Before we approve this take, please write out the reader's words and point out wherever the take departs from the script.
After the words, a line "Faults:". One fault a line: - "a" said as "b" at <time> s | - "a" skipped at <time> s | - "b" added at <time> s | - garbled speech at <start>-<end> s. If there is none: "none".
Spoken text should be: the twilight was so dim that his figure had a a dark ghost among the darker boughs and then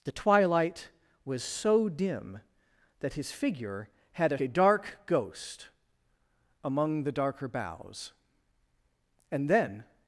the twilight was so dim that his figure had a a dark ghost among the darker boughs and then
Faults:
none